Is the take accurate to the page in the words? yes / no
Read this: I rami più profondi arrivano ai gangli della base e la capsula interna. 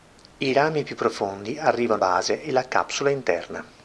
no